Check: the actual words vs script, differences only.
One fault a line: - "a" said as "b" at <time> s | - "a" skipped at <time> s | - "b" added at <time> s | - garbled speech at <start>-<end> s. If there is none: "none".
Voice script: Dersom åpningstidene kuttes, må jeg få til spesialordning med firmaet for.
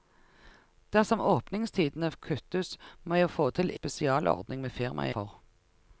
none